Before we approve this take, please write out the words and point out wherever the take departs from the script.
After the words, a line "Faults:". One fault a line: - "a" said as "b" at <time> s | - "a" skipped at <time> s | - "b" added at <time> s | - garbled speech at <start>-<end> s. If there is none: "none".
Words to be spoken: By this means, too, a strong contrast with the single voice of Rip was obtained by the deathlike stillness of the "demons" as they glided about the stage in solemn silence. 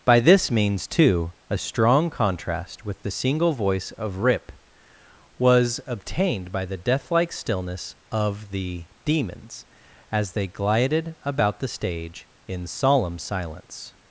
By this means, too, a strong contrast with the single voice of Rip was obtained by the deathlike stillness of the "demons" as they glided about the stage in solemn silence.
Faults:
none